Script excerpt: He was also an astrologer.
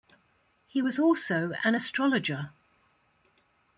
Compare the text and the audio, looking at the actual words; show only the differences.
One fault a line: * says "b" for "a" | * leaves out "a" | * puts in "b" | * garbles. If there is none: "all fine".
all fine